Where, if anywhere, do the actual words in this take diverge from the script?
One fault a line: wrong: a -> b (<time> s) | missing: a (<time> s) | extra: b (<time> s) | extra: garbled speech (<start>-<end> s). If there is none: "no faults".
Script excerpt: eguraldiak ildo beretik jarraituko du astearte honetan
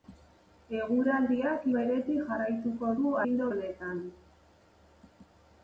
missing: ildo (1.7 s)
wrong: astearte -> ildo (3.2 s)